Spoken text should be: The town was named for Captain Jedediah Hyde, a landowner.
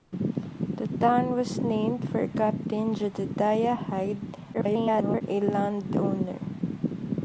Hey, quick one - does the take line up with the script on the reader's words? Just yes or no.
no